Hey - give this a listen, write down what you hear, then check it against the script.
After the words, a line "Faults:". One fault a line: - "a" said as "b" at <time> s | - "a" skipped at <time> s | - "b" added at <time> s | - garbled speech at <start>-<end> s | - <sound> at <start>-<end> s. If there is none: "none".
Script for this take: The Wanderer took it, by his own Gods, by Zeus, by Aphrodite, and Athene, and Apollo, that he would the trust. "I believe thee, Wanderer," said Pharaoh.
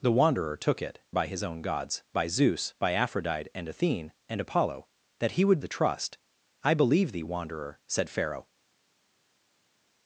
The Wanderer took it, by his own Gods, by Zeus, by Aphrodite, and Athene, and Apollo, that he would the trust. "I believe thee, Wanderer," said Pharaoh.
Faults:
none